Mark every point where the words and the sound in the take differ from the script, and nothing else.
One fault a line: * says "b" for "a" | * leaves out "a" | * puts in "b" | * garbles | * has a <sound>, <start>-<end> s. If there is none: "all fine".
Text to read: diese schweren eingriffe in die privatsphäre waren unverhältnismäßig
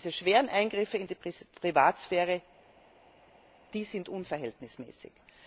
* says "sind" for "waren"